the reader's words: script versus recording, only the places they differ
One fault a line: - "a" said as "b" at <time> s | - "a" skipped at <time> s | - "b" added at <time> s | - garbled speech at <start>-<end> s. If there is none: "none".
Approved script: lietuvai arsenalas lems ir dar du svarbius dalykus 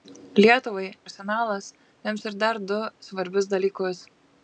none